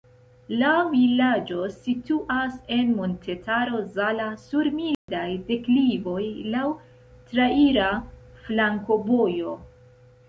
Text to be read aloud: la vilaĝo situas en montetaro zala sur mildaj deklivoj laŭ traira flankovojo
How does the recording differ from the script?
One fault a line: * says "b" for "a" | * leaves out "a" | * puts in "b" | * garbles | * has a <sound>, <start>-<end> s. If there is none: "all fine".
* has a dropout, 4.9-5.1 s